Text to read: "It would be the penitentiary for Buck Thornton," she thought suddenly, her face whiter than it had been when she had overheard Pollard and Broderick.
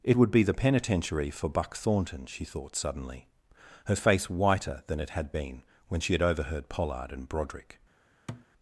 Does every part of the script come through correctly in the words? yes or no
yes